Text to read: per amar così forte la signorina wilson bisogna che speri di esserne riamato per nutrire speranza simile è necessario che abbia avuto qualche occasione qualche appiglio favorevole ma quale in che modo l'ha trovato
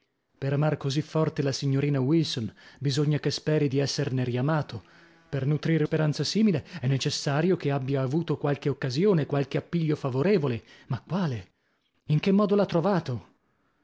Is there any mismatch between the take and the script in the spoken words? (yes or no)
no